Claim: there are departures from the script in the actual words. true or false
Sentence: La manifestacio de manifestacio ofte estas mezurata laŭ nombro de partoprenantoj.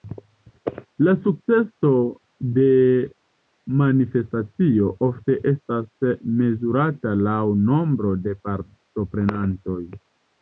true